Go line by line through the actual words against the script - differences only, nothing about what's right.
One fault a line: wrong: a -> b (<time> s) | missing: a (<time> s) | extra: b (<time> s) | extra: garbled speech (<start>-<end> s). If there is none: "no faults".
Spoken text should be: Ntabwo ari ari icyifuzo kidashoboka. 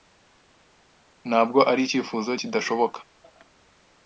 missing: ari (1.8 s)